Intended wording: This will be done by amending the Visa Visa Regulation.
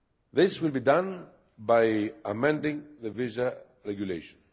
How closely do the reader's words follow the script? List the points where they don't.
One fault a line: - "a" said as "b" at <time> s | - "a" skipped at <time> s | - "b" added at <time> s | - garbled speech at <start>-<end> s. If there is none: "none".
- "Visa" skipped at 3.6 s